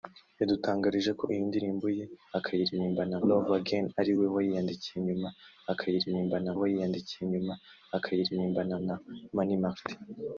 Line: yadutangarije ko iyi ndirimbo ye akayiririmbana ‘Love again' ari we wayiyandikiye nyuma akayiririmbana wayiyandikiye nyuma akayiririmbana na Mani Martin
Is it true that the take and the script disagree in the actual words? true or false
false